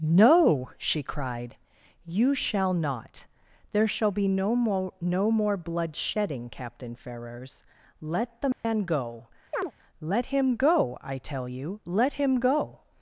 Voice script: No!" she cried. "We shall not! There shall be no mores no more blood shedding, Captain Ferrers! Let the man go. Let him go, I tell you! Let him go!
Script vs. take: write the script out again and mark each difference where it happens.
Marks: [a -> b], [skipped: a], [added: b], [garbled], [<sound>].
No!" she cried. ["We -> You] shall not! There shall be no [mores -> more] no more blood shedding, Captain Ferrers! Let the man [dropout] go. [chirp] Let him go, I tell you! Let him go!